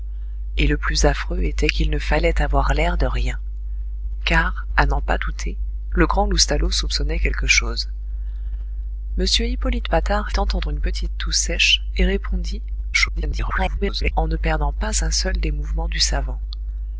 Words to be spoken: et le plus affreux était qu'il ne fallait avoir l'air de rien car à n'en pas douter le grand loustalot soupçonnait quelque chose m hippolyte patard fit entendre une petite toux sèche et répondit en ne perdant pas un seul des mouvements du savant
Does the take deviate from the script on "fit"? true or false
true